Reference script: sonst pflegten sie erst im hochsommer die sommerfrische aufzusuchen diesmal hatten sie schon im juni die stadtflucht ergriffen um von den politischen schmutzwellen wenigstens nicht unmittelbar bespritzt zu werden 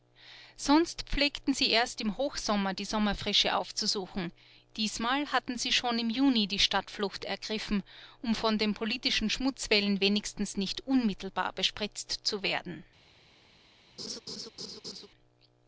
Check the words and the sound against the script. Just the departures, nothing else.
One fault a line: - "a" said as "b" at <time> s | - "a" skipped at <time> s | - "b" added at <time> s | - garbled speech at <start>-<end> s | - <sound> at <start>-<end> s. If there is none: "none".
- laugh at 14.0-15.1 s